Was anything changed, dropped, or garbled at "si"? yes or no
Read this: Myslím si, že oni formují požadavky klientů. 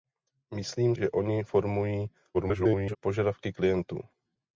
yes